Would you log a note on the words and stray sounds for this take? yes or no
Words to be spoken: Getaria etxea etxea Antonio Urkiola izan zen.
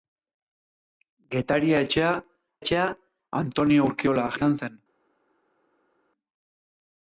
no